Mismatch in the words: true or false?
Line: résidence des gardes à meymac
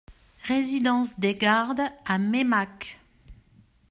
false